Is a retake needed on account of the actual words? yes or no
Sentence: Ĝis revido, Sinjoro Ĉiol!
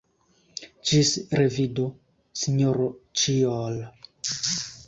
no